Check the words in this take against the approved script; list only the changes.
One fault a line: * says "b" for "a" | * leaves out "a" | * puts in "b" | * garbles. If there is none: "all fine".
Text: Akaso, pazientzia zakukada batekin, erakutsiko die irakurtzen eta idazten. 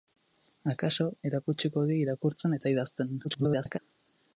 * leaves out "pazientzia zakukada batekin"
* garbles